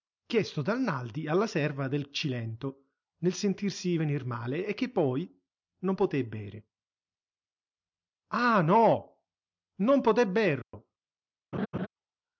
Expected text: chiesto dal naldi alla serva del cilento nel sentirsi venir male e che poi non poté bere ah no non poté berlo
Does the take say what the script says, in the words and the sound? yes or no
no